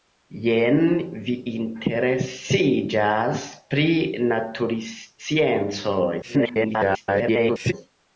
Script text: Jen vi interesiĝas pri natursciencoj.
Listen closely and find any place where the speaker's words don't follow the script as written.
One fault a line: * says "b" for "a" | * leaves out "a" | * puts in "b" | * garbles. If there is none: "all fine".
* garbles